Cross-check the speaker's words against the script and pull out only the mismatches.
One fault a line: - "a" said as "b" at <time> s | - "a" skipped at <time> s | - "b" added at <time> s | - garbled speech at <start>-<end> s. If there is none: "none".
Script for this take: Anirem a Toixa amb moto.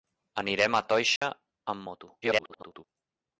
- garbled speech at 2.2-2.8 s